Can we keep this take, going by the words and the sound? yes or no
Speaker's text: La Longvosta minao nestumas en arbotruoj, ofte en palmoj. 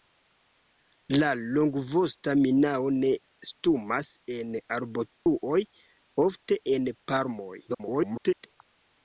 no